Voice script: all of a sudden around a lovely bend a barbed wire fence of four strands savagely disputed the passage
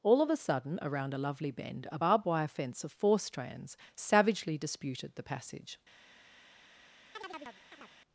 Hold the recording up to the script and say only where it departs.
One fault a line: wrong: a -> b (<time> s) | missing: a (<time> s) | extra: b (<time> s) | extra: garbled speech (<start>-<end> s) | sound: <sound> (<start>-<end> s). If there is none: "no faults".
sound: chirp (7.1-8.0 s)